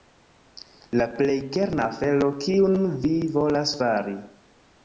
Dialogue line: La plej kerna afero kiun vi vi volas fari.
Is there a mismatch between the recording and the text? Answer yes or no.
yes